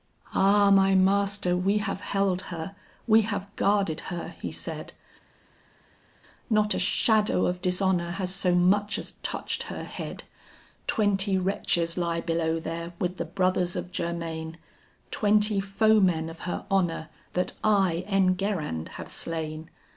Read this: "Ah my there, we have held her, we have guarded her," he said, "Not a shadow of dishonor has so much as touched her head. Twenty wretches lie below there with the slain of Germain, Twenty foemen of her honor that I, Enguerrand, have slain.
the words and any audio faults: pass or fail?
fail